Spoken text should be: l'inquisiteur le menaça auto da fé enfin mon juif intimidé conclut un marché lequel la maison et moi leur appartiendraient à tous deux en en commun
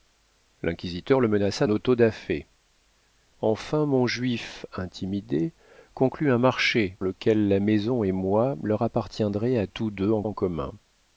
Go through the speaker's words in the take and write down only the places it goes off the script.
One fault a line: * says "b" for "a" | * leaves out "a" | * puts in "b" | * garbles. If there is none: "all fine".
all fine